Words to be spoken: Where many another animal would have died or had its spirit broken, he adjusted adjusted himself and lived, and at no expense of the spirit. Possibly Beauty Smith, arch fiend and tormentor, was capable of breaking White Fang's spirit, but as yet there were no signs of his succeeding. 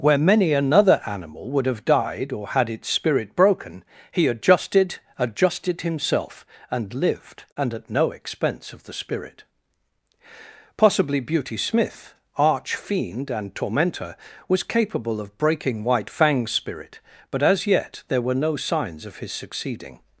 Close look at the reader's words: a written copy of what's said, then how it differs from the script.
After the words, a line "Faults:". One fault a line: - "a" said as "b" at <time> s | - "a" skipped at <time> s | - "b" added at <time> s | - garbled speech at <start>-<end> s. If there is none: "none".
Where many another animal would have died or had its spirit broken, he adjusted adjusted himself and lived, and at no expense of the spirit. Possibly Beauty Smith, arch fiend and tormentor, was capable of breaking White Fang's spirit, but as yet there were no signs of his succeeding.
Faults:
none